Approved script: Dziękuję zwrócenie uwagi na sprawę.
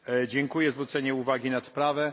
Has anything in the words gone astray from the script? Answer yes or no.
no